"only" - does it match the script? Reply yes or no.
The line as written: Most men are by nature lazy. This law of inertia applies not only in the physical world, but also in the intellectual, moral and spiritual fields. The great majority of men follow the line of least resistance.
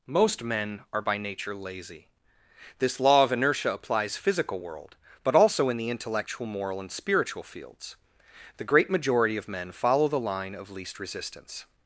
no